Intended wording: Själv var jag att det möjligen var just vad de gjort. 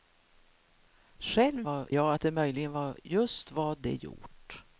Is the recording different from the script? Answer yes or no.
no